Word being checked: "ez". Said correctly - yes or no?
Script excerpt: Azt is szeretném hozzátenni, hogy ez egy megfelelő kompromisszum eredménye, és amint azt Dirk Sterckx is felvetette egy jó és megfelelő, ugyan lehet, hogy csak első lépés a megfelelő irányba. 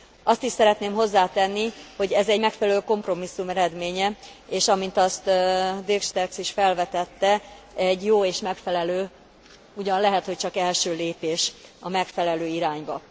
yes